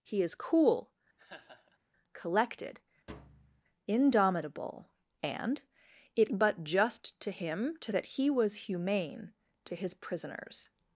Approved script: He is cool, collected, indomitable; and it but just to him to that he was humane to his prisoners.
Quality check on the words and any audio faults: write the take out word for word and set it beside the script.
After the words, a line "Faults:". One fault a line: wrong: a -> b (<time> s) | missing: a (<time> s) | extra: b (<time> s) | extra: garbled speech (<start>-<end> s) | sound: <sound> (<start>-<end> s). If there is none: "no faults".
He is cool, collected, indomitable; and it but just to him to that he was humane to his prisoners.
Faults:
sound: laugh (1.2-1.8 s)
sound: thud (3.1-3.6 s)